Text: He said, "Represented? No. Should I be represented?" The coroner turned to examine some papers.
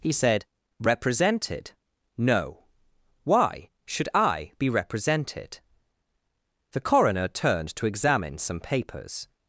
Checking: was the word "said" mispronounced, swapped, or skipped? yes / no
no